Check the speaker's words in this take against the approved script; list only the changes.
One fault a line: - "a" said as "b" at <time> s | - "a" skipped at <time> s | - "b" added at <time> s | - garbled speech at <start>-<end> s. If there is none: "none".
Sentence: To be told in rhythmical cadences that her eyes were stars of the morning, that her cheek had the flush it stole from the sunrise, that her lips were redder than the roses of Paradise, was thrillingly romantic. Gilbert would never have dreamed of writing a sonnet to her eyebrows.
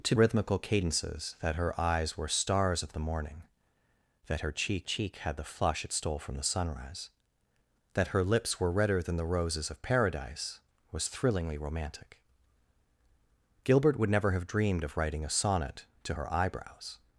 - "be told in" skipped at 0.1 s
- "cheek" added at 4.8 s